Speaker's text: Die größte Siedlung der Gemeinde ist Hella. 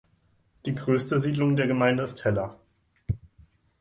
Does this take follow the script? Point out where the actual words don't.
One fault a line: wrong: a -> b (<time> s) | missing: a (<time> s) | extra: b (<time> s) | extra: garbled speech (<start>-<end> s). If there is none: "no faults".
no faults